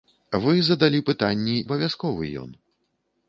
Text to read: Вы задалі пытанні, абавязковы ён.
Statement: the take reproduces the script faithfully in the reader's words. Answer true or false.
true